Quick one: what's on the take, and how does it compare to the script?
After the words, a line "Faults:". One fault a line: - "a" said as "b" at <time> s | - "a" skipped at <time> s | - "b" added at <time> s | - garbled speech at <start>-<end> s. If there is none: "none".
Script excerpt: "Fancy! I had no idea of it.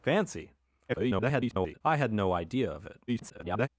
"Fancy! [garbled] I had no idea of it. [garbled]
Faults:
- garbled speech at 0.9-1.8 s
- garbled speech at 3.1-3.7 s